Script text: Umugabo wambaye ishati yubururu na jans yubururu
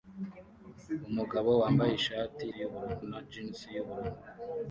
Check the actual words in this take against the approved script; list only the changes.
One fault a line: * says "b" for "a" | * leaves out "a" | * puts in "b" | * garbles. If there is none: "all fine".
all fine